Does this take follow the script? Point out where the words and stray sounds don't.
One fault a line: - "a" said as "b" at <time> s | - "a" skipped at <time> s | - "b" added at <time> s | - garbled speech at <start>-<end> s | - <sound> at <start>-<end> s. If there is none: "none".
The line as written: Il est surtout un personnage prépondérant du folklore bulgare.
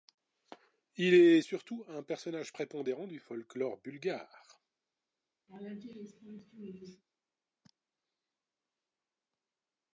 - laugh at 5.5-7.0 s